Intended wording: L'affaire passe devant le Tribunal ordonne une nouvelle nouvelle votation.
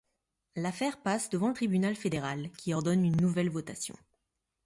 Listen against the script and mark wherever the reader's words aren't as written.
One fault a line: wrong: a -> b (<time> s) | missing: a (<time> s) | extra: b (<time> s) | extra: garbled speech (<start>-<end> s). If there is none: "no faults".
extra: fédéral qui (2.0 s)
missing: nouvelle (3.5 s)